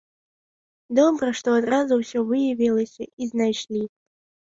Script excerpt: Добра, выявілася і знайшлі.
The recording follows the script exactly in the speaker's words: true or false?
false